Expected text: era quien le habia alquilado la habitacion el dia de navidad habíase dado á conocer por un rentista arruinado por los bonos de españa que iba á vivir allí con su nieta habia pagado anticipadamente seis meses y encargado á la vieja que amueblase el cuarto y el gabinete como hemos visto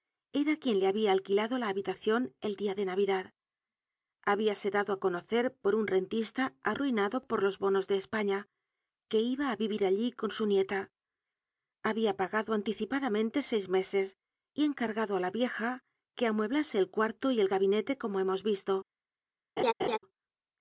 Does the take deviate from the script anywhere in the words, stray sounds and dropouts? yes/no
yes